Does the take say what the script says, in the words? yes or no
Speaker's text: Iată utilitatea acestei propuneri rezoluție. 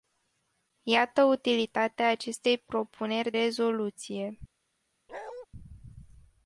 yes